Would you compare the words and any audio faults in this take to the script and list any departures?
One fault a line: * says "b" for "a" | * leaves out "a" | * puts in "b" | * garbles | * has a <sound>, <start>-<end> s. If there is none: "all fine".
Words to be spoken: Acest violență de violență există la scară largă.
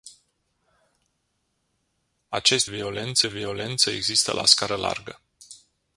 all fine